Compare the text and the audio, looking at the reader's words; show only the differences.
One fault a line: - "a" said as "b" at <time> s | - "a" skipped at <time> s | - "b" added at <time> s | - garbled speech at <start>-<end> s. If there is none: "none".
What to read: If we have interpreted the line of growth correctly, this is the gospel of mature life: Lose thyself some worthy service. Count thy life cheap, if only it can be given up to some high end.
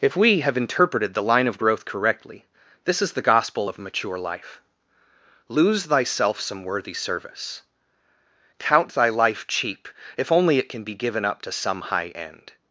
none